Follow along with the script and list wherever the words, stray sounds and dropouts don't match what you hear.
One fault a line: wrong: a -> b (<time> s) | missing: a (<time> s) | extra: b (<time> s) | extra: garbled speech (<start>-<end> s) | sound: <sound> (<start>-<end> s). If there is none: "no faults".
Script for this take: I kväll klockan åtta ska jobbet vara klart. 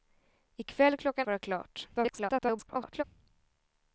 missing: åtta ska jobbet (1.3 s)
extra: garbled speech (1.9-3.0 s)